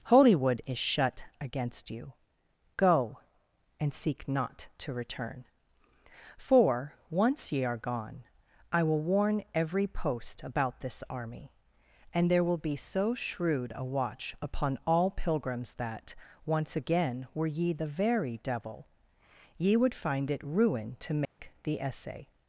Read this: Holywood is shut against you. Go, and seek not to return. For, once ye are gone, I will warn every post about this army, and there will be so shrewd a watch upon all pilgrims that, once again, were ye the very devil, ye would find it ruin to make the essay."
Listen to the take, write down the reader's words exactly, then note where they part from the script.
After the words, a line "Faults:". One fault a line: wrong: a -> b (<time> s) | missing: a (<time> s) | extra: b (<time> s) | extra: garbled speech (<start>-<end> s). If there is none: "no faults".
Holywood is shut against you. Go, and seek not to return. For, once ye are gone, I will warn every post about this army, and there will be so shrewd a watch upon all pilgrims that, once again, were ye the very devil, ye would find it ruin to make the essay."
Faults:
no faults